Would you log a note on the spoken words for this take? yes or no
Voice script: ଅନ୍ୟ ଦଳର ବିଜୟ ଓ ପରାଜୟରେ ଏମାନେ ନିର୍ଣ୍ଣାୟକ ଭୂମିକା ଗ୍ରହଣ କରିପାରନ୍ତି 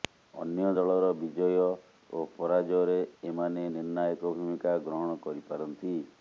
no